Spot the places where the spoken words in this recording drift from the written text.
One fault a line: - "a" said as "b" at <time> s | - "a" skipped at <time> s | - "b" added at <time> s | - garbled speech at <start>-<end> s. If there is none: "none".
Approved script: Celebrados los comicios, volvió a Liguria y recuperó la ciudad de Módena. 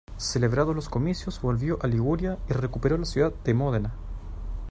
none